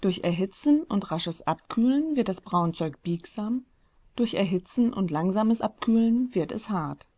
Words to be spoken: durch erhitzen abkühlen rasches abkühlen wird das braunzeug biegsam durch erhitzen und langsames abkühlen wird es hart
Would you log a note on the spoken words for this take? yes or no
yes